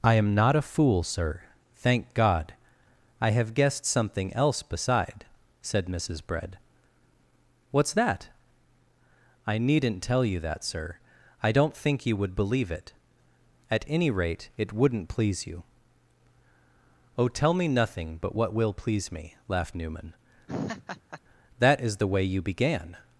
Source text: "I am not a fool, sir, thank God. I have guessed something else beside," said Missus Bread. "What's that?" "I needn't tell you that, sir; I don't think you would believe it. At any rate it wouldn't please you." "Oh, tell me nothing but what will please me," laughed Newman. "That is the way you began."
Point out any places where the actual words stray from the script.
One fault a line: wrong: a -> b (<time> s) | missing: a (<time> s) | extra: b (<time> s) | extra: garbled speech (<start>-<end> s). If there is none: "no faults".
no faults